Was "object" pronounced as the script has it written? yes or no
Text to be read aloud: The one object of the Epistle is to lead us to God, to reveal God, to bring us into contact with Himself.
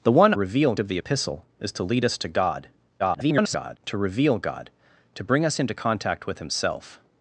no